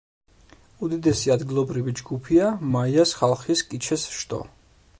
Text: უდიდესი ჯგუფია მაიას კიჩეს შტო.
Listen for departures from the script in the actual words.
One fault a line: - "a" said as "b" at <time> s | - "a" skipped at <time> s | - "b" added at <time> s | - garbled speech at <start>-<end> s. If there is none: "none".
- "ადგილობრივი" added at 1.4 s
- "ხალხის" added at 3.2 s